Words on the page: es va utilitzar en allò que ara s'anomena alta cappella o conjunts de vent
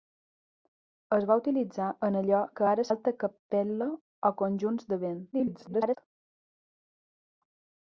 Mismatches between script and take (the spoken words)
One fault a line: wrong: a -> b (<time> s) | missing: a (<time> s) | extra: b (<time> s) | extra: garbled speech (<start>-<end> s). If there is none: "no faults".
missing: s'anomena (2.9 s)
extra: garbled speech (5.3-6.0 s)